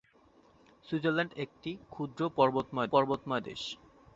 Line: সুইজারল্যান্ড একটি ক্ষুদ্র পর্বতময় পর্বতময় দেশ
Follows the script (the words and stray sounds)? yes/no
yes